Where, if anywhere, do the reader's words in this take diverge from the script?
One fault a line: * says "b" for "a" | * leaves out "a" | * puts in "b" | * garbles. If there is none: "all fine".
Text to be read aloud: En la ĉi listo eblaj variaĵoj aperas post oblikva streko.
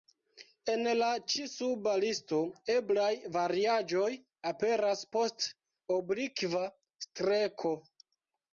* puts in "suba"